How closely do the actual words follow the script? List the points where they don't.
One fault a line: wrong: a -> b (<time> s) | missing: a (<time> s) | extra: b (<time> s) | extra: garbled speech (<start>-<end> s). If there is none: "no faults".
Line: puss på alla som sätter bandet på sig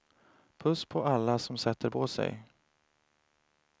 missing: bandet (1.9 s)